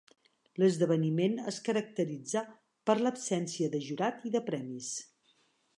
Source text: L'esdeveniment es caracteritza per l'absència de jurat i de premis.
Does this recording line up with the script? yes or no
yes